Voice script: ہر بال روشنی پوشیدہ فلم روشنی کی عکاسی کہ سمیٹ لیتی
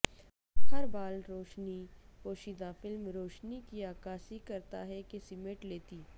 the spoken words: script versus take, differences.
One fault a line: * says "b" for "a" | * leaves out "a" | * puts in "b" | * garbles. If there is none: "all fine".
* puts in "کرتا ہے"